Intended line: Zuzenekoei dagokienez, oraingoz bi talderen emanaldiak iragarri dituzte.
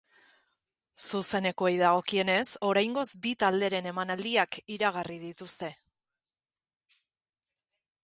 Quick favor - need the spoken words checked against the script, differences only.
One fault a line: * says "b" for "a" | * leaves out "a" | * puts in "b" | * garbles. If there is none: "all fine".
all fine